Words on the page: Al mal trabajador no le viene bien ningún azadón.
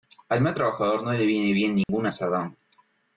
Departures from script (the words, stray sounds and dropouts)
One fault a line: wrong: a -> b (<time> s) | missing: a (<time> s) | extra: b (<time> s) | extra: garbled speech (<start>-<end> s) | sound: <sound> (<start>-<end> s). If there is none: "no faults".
sound: dropout (1.8-1.9 s)